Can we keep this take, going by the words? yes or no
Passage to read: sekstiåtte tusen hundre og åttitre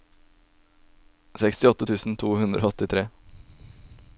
no